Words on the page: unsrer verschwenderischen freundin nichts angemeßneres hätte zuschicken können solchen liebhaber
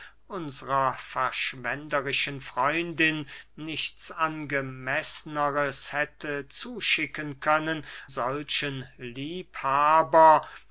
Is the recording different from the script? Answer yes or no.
no